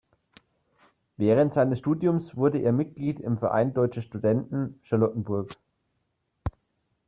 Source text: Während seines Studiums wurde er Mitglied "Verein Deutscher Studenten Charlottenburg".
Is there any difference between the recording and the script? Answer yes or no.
yes